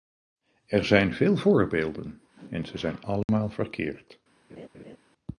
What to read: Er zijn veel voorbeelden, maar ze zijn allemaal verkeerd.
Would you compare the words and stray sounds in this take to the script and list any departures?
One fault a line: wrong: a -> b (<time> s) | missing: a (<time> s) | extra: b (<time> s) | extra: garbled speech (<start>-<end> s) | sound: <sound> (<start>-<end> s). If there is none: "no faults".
wrong: maar -> en (2.5 s)
sound: dropout (3.2-3.3 s)
sound: laugh (4.5-5.0 s)